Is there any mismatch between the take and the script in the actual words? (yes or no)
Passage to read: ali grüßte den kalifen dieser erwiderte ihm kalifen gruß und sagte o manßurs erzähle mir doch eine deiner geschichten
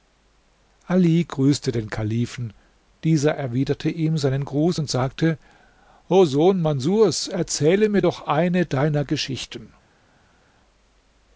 yes